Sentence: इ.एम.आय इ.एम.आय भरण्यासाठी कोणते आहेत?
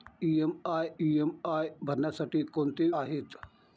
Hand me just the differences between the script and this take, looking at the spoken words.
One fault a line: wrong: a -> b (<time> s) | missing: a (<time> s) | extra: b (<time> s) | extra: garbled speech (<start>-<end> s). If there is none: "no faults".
no faults